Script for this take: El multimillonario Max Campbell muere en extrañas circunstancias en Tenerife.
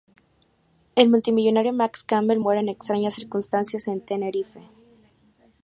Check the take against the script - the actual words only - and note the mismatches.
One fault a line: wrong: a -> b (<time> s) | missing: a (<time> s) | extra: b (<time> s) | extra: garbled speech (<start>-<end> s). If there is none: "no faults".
no faults